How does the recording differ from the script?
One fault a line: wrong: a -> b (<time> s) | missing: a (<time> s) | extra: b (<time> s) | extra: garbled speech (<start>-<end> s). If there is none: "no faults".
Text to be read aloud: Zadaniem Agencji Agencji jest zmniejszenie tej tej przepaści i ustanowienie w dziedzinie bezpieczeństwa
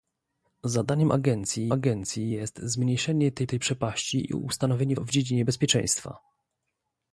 no faults